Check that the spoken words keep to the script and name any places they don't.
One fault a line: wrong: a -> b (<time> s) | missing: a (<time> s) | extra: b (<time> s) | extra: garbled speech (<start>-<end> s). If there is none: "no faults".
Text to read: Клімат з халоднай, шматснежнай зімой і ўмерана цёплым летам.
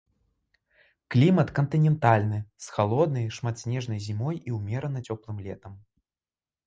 extra: кантынентальны (1.6 s)